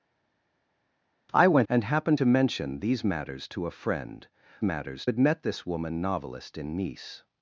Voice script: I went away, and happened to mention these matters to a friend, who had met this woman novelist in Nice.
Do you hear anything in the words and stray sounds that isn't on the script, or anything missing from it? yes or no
yes